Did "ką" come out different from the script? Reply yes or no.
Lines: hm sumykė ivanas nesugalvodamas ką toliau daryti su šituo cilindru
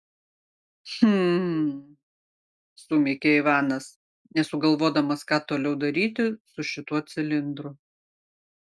no